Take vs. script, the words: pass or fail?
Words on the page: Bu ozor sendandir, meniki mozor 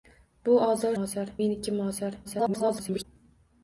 fail